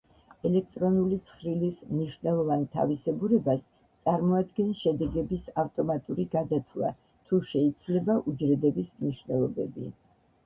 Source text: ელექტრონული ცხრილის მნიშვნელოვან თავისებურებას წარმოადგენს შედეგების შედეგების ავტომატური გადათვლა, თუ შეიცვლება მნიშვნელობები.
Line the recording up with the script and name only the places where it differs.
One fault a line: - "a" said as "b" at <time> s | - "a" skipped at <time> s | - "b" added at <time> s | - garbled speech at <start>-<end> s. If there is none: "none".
- "შედეგების" skipped at 5.5 s
- "უჯრედების" added at 8.3 s